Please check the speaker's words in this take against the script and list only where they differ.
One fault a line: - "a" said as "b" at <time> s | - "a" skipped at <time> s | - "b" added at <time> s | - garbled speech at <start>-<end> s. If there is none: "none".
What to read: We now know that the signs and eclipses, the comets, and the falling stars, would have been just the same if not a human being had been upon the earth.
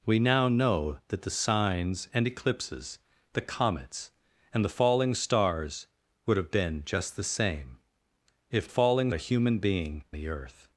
- "not" said as "falling" at 8.6 s
- "had been upon" skipped at 10.0 s